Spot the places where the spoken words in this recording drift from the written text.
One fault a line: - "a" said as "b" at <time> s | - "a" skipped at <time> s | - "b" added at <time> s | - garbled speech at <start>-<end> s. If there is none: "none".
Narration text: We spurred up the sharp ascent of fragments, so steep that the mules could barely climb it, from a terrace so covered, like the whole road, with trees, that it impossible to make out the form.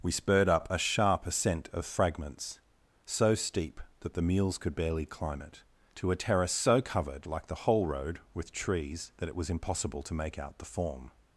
- "the" said as "a" at 0.7 s
- "from" said as "to" at 5.9 s
- "was" added at 9.4 s